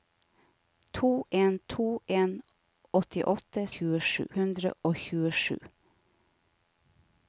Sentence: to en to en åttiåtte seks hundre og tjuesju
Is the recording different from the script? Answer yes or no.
yes